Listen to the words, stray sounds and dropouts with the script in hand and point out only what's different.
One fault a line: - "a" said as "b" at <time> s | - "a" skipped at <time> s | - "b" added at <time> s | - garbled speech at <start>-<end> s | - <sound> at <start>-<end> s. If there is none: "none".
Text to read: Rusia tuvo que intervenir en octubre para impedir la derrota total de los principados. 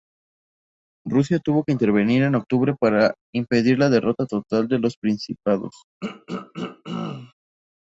- throat clearing at 6.0-7.3 s